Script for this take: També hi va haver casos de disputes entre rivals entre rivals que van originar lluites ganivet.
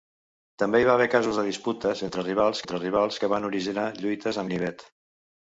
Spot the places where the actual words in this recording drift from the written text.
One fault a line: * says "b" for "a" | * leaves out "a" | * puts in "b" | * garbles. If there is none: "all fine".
all fine